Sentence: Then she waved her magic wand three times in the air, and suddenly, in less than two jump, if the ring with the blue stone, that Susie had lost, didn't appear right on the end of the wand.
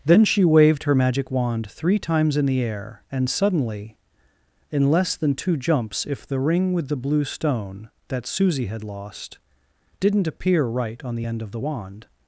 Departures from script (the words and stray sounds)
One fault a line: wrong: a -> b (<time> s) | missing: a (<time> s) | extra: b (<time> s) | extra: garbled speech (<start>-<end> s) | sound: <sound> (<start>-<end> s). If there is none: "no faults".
wrong: jump -> jumps (5.6 s)